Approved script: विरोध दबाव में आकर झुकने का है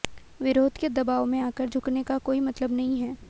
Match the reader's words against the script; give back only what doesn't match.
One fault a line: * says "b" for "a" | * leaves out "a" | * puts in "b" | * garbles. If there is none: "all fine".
* puts in "के"
* puts in "कोई मतलब नहीं"